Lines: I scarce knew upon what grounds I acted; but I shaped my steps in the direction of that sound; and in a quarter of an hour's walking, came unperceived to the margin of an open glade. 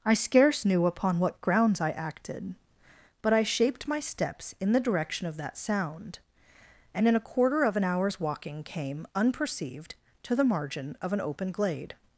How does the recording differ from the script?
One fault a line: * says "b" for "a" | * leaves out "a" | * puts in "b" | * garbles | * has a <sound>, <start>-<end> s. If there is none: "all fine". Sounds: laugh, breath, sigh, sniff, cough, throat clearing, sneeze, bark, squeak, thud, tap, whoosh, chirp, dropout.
all fine